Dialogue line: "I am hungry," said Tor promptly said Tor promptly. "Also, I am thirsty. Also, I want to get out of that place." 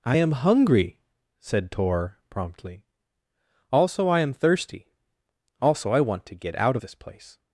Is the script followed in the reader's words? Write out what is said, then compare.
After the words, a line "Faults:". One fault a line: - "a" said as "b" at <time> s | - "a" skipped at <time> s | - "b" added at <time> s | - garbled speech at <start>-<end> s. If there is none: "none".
"I am hungry," said Tor promptly. "Also, I am thirsty. Also, I want to get out of this place."
Faults:
- "said Tor promptly" skipped at 2.8 s
- "that" said as "this" at 6.8 s